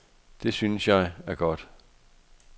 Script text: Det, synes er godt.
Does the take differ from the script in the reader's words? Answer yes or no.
yes